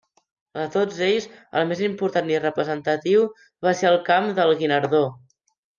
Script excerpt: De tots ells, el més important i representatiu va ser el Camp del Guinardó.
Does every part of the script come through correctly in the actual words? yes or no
yes